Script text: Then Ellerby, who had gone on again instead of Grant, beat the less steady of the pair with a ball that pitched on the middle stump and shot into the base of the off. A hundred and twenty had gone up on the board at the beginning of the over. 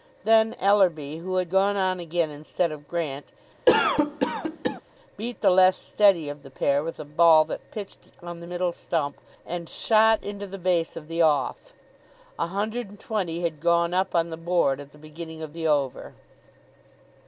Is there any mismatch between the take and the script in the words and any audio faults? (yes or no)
yes